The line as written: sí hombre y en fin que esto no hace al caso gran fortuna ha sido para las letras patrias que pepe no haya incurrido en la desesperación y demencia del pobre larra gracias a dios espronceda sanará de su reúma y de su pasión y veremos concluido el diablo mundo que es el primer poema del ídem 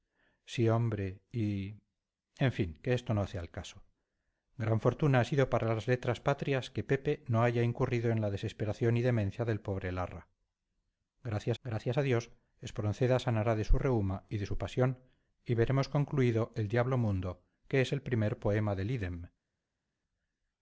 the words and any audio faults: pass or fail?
fail